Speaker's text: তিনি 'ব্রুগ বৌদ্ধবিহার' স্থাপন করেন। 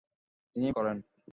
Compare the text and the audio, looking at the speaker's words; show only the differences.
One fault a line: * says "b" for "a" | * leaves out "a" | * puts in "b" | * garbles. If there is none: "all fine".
* leaves out "ব্রুগ বৌদ্ধবিহার স্থাপন"